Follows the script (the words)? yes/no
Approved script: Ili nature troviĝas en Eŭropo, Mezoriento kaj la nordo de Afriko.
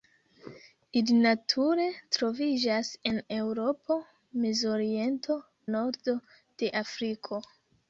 no